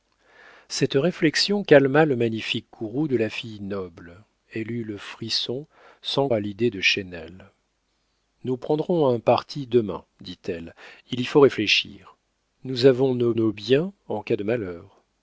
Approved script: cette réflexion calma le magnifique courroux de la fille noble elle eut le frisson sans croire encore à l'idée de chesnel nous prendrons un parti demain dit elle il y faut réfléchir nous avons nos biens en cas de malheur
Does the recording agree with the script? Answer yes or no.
no